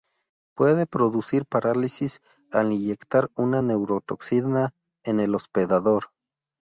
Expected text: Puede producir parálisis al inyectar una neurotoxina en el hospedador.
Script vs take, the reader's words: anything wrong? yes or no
no